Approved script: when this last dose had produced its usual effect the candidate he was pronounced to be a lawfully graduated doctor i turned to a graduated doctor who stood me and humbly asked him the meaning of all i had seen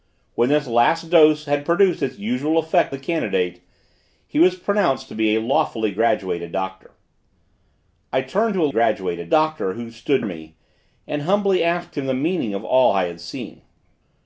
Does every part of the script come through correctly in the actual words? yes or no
yes